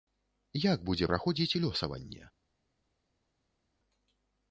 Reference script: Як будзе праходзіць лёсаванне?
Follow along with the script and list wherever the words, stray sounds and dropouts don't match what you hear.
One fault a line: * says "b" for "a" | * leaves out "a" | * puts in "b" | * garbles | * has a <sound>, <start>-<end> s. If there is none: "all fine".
all fine